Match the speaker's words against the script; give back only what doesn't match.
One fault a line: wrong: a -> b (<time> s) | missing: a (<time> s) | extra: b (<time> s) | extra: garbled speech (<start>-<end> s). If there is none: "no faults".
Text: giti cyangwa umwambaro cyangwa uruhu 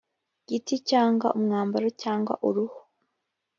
no faults